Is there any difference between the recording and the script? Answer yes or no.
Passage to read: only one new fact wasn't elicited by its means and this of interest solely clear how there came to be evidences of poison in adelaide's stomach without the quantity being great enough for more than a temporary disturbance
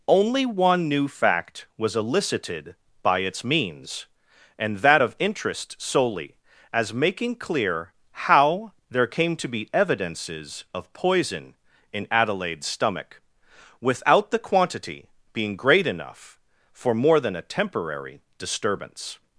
yes